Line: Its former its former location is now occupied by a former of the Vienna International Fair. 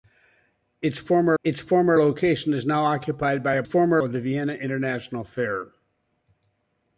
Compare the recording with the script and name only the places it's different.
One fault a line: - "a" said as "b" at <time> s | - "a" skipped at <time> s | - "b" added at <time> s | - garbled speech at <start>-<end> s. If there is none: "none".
none